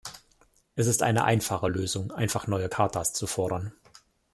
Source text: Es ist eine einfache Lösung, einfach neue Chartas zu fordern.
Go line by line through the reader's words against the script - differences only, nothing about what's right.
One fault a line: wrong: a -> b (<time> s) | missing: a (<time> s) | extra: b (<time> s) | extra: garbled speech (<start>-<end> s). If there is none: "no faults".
no faults